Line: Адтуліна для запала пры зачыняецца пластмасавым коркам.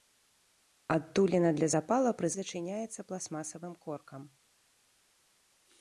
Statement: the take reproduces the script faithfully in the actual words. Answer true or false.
true